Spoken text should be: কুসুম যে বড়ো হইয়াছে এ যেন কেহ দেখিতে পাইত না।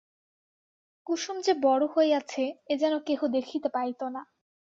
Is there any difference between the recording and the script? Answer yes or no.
no